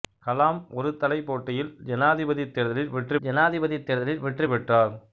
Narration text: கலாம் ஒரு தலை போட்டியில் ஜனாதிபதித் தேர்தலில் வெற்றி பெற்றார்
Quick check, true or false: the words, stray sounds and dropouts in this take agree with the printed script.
false